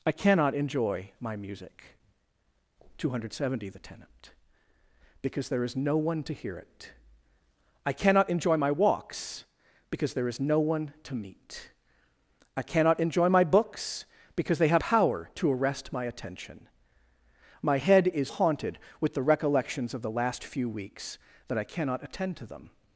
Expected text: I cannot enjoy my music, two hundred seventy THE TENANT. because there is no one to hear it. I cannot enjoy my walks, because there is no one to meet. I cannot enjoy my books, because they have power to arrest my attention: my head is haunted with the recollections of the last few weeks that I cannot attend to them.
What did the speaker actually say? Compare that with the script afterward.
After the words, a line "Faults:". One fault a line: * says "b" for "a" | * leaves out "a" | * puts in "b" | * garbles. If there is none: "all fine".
I cannot enjoy my music, two hundred seventy THE TENANT. because there is no one to hear it. I cannot enjoy my walks, because there is no one to meet. I cannot enjoy my books, because they have power to arrest my attention: my head is haunted with the recollections of the last few weeks that I cannot attend to them.
Faults:
all fine